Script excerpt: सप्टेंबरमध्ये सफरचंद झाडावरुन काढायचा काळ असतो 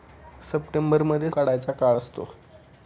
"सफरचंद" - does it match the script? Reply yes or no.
no